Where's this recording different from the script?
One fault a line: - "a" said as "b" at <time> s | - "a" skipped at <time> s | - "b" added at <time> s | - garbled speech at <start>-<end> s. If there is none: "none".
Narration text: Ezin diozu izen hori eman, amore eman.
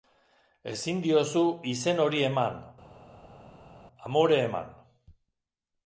none